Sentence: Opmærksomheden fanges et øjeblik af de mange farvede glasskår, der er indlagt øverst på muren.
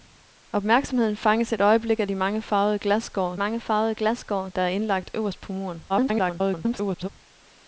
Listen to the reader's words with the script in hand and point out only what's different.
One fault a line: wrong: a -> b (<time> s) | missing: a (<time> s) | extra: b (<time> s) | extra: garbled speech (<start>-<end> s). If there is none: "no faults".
extra: mange farvede glasskår (3.3 s)
extra: garbled speech (5.9-7.1 s)